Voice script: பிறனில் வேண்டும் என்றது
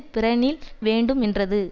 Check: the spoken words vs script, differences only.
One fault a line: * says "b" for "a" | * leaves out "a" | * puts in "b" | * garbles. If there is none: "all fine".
all fine